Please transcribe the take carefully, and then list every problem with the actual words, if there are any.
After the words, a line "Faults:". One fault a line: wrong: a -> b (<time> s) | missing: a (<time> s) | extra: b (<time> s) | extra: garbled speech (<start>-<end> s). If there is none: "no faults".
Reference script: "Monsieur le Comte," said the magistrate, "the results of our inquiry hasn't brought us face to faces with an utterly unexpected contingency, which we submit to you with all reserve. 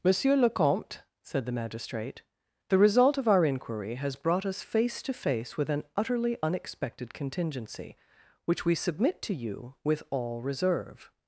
"Monsieur le Comte," said the magistrate, "the result of our inquiry has brought us face to face with an utterly unexpected contingency, which we submit to you with all reserve.
Faults:
wrong: results -> result (2.8 s)
wrong: hasn't -> has (4.0 s)
wrong: faces -> face (5.1 s)